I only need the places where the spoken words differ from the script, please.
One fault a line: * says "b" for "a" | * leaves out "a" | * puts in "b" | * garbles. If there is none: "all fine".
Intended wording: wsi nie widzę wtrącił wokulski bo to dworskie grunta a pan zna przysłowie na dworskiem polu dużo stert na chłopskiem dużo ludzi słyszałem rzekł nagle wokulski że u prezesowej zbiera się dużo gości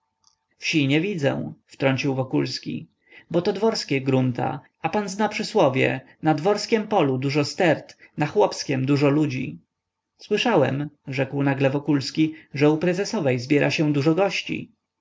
all fine